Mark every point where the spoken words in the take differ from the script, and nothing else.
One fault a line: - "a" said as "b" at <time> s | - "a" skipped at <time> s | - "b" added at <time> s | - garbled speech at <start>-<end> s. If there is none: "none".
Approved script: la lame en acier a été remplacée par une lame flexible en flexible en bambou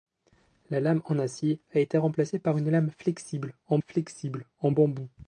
none